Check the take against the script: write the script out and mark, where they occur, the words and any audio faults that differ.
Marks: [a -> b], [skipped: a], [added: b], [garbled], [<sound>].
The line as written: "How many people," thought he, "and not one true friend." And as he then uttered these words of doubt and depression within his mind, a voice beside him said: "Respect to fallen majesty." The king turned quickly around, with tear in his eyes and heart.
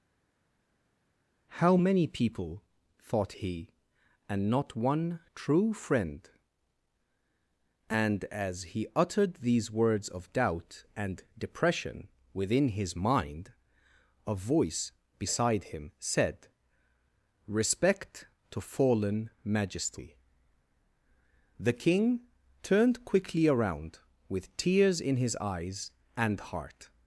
"How many people," thought he, "and not one true friend." And as he [skipped: then] uttered these words of doubt and depression within his mind, a voice beside him said: "Respect to fallen majesty." The king turned quickly around, with [tear -> tears] in his eyes and heart.